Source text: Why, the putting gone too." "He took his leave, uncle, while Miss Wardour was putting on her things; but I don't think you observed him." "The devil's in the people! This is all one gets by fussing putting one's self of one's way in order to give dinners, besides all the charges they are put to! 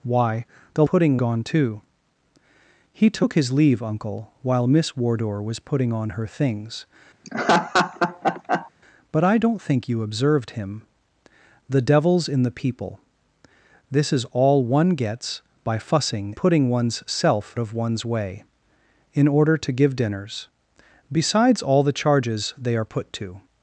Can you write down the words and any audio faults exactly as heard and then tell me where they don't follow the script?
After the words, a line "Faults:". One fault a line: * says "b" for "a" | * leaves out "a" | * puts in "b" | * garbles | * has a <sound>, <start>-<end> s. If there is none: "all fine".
Why, the putting gone too." "He took his leave, uncle, while Miss Wardour was putting on her things; but I don't think you observed him." "The devil's in the people! This is all one gets by fussing putting one's self of one's way in order to give dinners, besides all the charges they are put to!
Faults:
* has a laugh, 7.2-8.7 s